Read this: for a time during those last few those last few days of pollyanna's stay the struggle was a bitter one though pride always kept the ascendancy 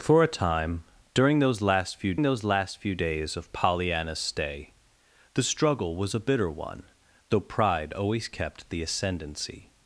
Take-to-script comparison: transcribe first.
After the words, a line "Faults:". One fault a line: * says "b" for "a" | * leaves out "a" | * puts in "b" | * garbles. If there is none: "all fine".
for a time during those last few those last few days of pollyanna's stay the struggle was a bitter one though pride always kept the ascendancy
Faults:
all fine